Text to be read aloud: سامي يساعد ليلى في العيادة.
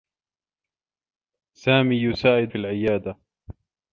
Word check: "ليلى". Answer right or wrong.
wrong